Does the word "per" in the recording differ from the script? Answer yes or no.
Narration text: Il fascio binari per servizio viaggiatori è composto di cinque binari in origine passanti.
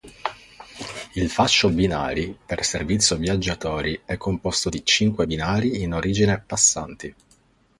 no